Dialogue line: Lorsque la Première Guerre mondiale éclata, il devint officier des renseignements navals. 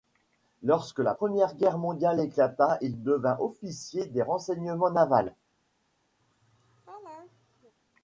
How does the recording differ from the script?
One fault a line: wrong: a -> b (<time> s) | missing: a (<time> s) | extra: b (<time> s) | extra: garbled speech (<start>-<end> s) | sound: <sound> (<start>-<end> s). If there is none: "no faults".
sound: laugh (6.2-7.7 s)